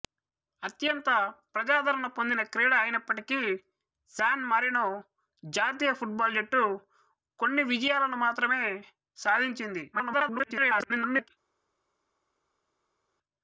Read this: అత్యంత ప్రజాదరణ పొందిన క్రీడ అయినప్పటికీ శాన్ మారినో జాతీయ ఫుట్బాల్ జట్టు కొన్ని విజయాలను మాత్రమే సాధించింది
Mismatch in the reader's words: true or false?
true